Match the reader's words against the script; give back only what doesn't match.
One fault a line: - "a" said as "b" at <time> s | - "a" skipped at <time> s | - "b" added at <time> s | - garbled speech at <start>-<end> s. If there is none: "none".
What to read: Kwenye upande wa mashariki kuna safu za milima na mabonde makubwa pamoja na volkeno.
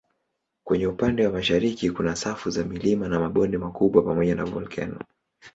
none